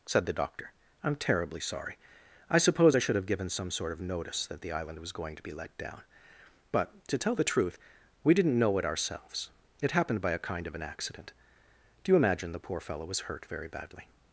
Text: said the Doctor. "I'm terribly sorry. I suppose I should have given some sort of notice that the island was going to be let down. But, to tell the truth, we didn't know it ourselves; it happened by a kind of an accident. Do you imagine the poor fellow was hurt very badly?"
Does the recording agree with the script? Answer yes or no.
yes